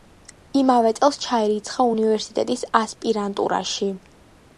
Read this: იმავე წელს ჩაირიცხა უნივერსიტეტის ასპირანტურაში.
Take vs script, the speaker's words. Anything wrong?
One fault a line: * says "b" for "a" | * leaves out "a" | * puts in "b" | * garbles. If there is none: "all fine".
all fine